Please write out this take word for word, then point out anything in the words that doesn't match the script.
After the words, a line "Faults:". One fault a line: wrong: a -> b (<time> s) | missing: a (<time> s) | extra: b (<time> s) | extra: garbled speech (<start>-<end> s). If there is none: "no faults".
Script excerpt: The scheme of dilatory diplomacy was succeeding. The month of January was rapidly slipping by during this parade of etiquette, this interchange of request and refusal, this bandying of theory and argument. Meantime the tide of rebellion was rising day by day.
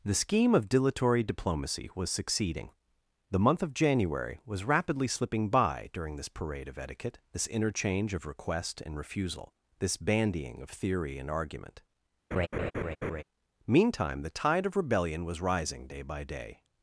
The scheme of dilatory diplomacy was succeeding. The month of January was rapidly slipping by during this parade of etiquette, this interchange of request and refusal, this bandying of theory and argument. Meantime the tide of rebellion was rising day by day.
Faults:
no faults